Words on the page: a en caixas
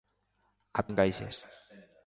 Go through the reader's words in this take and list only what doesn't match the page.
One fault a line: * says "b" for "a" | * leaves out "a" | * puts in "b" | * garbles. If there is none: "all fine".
all fine